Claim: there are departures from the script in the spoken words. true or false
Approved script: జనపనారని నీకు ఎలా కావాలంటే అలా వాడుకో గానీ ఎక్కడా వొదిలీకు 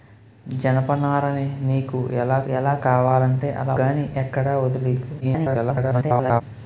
true